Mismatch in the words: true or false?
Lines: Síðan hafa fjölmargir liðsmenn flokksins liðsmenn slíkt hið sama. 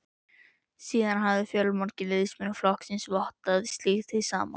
true